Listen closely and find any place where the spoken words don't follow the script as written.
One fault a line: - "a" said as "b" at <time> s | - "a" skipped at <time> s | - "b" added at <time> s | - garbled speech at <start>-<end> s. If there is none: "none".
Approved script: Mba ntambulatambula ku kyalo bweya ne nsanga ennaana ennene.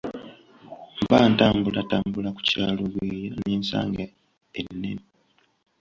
- "ennaana" skipped at 4.0 s